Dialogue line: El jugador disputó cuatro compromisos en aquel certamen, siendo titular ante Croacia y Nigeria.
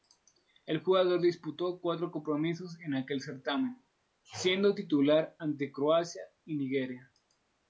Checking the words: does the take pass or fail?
pass